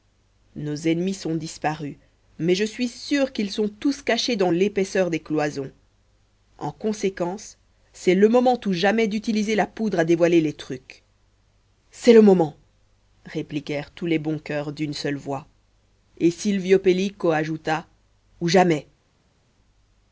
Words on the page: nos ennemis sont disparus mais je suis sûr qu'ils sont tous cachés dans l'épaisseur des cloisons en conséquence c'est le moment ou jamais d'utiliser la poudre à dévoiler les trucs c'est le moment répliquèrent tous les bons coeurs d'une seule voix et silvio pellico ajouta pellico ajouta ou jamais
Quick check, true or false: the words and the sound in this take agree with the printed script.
false